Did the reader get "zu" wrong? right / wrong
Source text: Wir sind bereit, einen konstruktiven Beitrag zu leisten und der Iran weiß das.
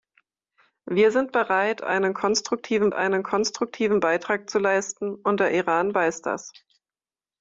right